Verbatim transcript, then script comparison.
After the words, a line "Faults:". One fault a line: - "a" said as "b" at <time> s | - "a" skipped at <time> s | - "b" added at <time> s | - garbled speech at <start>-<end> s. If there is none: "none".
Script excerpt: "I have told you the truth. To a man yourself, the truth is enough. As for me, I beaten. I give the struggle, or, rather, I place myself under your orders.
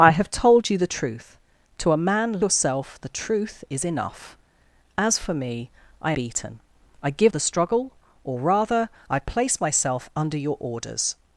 "I have told you the truth. To a man yourself, the truth is enough. As for me, I beaten. I give the struggle, or, rather, I place myself under your orders.
Faults:
none